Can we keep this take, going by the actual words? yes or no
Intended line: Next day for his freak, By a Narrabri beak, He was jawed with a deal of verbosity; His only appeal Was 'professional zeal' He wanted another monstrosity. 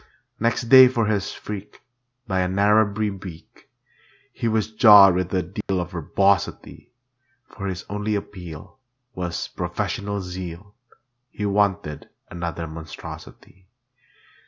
no